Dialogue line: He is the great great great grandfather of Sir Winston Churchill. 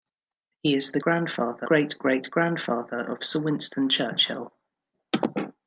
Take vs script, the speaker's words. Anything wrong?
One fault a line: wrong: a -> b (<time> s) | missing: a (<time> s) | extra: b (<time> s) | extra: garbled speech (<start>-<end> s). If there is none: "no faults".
wrong: great -> grandfather (1.0 s)